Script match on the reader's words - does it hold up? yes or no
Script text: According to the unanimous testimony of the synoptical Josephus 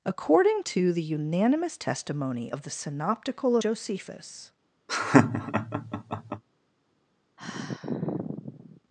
yes